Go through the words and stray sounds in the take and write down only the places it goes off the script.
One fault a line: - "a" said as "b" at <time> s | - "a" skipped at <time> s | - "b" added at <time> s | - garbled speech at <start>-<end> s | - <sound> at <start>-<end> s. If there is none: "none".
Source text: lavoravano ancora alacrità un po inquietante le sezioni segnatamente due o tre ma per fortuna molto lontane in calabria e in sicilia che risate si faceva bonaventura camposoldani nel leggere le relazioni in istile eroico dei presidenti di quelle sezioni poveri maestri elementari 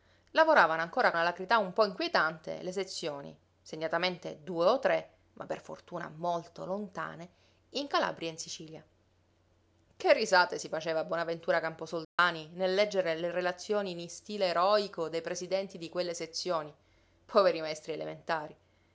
- dropout at 12.0-12.2 s